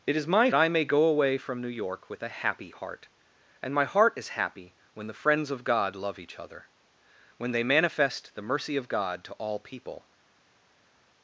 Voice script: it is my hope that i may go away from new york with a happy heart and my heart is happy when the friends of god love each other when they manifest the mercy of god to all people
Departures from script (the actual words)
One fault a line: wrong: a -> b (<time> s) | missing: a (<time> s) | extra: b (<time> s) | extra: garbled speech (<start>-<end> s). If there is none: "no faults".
missing: hope that (0.5 s)